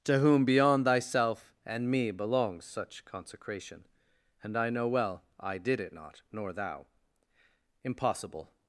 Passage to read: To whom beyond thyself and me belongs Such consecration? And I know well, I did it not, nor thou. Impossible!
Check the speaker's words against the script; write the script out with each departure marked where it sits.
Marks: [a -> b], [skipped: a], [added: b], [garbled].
To whom beyond thyself and me belongs Such consecration? And I know well, I did it not, nor thou. Impossible!